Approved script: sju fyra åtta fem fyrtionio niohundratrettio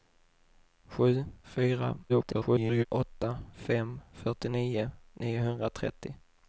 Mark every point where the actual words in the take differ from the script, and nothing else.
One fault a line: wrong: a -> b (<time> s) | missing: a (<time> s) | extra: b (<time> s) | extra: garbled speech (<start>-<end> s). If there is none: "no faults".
extra: garbled speech (2.1-2.9 s)